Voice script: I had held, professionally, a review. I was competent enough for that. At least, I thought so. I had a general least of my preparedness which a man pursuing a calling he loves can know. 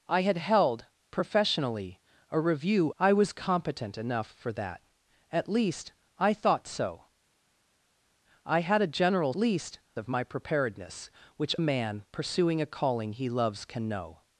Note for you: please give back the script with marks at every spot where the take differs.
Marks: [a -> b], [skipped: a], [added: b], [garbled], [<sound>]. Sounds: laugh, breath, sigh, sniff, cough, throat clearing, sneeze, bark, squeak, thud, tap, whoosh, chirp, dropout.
I had held, professionally, a review. I was competent enough for that. At least, I thought so. I had a general least of my preparedness which a man pursuing a calling he loves can know.